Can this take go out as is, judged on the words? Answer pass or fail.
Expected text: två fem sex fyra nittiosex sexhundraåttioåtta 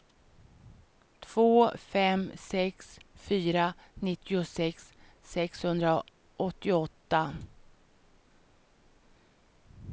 pass